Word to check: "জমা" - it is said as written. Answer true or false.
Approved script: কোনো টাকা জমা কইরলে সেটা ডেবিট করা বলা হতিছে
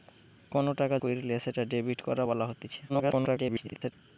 false